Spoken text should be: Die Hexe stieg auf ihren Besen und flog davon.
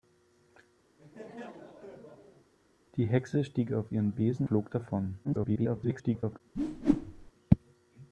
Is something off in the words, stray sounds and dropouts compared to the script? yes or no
yes